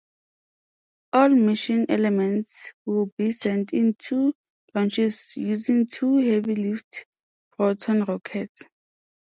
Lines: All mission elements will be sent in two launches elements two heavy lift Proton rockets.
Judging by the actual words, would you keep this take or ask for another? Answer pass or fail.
fail